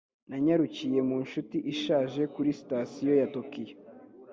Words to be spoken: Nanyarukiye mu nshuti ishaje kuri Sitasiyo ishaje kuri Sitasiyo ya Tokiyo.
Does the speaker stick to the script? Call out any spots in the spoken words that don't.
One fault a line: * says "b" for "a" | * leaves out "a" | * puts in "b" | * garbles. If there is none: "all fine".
* leaves out "ishaje kuri Sitasiyo"